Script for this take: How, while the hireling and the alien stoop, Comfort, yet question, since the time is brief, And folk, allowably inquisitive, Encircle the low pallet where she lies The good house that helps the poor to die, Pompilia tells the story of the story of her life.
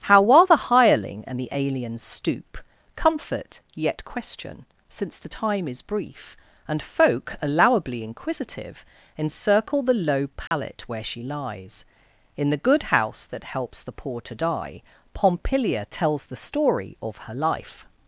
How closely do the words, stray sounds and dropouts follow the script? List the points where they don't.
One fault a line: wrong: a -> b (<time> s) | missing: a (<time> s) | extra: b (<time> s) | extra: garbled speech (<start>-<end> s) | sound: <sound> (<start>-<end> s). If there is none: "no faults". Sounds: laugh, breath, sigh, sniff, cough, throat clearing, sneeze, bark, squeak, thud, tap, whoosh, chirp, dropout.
sound: dropout (10.5-10.5 s)
extra: In (12.4 s)
missing: the story of (17.2 s)